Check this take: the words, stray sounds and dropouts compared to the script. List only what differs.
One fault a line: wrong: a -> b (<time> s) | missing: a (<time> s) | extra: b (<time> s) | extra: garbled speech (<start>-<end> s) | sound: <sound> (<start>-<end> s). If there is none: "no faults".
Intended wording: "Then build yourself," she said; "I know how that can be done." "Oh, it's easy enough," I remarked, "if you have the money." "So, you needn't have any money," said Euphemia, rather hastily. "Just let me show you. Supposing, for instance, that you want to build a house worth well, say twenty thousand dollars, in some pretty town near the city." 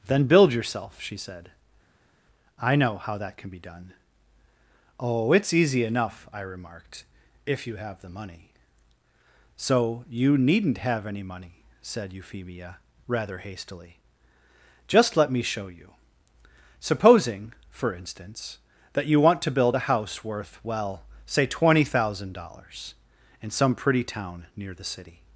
no faults